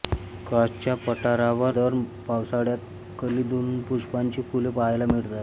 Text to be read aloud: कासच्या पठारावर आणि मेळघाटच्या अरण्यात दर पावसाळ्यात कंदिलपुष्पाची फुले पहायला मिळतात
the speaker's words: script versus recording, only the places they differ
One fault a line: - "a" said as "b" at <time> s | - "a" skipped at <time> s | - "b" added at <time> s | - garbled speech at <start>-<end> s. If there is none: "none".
- "आणि मेळघाटच्या अरण्यात" skipped at 1.8 s